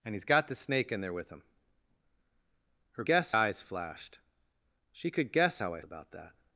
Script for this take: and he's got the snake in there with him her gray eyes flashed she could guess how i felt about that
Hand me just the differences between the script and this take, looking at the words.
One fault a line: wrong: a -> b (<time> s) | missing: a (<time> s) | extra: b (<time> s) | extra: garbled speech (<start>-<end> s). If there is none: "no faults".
wrong: gray -> guess (3.1 s)
missing: felt (5.8 s)